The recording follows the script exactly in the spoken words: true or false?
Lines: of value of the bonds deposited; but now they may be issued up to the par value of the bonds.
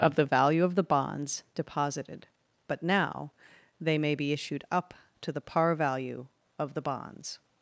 false